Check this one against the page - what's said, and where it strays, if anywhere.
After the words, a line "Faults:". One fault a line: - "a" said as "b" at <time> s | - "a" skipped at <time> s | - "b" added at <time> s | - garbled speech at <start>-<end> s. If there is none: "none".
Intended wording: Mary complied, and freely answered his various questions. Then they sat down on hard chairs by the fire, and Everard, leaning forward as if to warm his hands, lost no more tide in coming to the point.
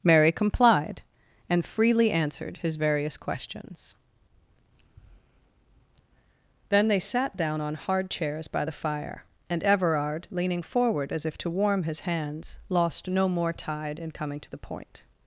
Mary complied, and freely answered his various questions. Then they sat down on hard chairs by the fire, and Everard, leaning forward as if to warm his hands, lost no more tide in coming to the point.
Faults:
none